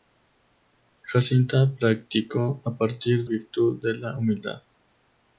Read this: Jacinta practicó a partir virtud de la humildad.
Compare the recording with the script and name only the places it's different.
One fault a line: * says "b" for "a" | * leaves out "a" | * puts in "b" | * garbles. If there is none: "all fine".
all fine